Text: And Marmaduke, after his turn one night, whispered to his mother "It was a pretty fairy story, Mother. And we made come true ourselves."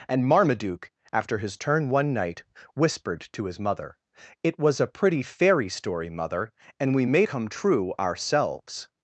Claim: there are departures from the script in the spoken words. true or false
false